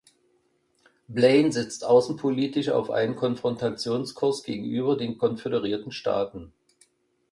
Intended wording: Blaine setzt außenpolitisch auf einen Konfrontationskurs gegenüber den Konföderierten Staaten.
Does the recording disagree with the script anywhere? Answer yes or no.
no